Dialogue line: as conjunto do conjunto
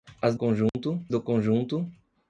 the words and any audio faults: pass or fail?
fail